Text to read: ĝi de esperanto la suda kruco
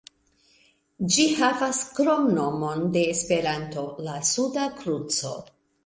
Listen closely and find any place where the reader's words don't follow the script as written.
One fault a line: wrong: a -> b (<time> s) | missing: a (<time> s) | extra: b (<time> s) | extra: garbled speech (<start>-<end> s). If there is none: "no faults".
extra: havas kromnomon (1.4 s)